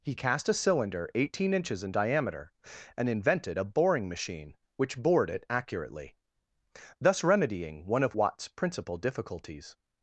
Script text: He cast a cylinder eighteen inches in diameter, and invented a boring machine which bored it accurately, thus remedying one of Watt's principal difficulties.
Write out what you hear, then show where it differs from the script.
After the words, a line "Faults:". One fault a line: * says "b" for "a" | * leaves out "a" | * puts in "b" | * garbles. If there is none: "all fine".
He cast a cylinder eighteen inches in diameter, and invented a boring machine which bored it accurately, thus remedying one of Watt's principal difficulties.
Faults:
all fine